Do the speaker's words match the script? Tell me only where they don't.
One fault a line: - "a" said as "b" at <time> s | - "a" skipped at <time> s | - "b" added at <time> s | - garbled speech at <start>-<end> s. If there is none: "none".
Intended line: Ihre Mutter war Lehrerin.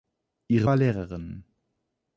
- "Mutter" skipped at 0.7 s